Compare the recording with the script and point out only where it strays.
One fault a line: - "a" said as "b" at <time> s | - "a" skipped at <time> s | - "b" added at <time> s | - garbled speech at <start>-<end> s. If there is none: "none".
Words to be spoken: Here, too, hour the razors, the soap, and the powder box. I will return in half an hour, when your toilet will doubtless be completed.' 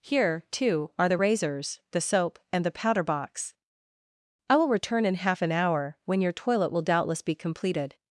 - "hour" said as "are" at 1.0 s